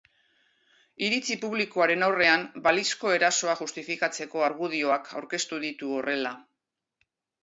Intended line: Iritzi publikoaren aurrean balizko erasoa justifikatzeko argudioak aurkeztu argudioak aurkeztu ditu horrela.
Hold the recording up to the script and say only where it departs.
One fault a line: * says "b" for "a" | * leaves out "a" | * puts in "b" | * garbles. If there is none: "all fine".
* leaves out "argudioak aurkeztu"